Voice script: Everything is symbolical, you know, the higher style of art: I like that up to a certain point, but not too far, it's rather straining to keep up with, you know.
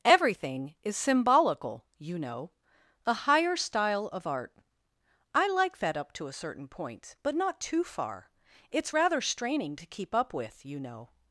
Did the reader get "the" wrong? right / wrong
wrong